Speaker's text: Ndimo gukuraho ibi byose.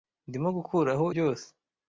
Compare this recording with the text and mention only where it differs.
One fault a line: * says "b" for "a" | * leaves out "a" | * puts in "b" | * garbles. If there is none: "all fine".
* leaves out "ibi"